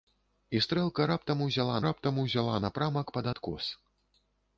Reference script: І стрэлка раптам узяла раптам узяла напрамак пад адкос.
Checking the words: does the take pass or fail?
pass